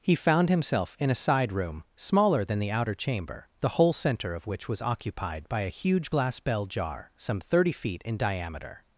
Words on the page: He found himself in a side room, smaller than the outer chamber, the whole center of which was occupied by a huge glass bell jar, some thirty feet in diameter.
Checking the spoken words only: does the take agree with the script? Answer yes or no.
yes